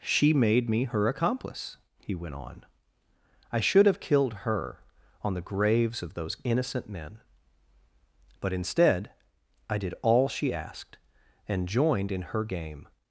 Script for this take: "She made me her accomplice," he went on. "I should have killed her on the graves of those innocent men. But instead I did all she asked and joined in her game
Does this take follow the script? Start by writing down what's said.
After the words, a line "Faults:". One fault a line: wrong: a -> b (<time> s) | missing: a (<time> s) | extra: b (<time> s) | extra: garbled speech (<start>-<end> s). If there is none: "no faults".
"She made me her accomplice," he went on. "I should have killed her on the graves of those innocent men. But instead I did all she asked and joined in her game
Faults:
no faults